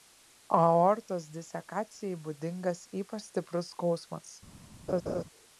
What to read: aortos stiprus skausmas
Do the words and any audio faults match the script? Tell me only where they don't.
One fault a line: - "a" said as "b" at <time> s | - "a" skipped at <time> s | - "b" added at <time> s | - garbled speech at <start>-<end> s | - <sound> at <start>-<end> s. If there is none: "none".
- "disekacijai būdingas ypač" added at 1.4 s
- laugh at 4.9-5.2 s